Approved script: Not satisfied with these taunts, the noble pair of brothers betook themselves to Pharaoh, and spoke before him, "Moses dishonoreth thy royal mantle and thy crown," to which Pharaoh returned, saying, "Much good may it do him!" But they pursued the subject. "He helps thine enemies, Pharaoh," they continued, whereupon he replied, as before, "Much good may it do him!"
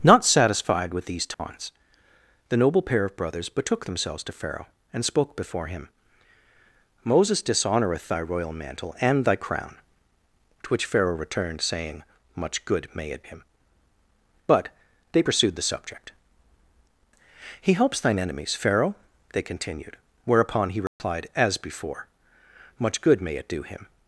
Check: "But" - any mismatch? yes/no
no